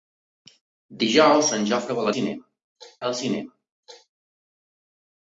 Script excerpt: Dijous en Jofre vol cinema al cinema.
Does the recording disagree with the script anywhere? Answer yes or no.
no